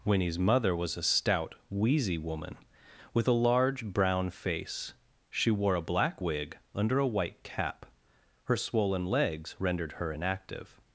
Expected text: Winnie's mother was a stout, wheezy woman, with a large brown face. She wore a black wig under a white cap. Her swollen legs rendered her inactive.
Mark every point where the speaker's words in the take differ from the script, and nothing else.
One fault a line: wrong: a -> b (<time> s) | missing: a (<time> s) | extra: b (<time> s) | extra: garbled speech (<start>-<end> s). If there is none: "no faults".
no faults